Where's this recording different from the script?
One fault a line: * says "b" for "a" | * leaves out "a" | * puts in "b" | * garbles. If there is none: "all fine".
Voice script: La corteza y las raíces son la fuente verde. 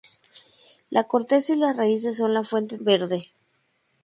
all fine